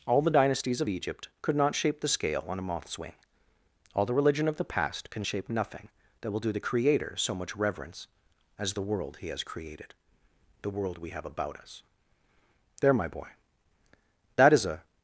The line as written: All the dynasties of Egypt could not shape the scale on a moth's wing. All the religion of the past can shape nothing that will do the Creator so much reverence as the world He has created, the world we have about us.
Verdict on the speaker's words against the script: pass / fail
fail